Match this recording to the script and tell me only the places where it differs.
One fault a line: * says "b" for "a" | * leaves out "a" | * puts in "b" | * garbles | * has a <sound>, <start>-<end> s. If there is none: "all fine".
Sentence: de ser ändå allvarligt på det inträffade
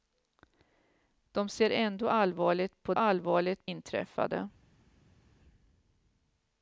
* says "allvarligt" for "det"